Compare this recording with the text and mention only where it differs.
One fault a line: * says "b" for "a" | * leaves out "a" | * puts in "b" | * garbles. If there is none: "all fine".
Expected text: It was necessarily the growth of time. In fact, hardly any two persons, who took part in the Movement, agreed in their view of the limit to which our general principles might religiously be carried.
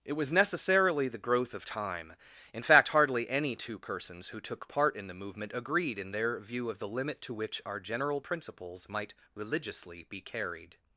all fine